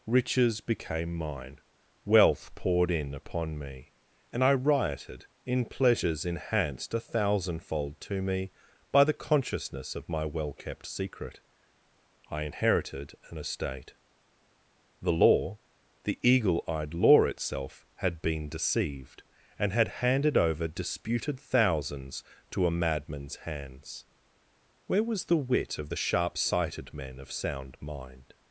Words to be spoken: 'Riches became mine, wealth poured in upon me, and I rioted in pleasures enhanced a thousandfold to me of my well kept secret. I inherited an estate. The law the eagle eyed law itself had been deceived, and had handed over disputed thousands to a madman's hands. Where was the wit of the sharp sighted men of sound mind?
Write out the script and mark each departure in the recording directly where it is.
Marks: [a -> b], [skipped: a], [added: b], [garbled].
'Riches became mine, wealth poured in upon me, and I rioted in pleasures enhanced a thousandfold to me [added: by the consciousness] of my well kept secret. I inherited an estate. The law the eagle eyed law itself had been deceived, and had handed over disputed thousands to a madman's hands. Where was the wit of the sharp sighted men of sound mind?